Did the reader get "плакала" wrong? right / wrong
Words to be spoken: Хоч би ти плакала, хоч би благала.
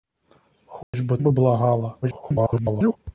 wrong